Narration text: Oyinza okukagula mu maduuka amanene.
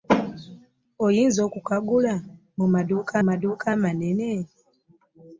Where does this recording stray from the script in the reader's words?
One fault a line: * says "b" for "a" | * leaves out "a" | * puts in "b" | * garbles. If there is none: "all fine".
* puts in "maduuka"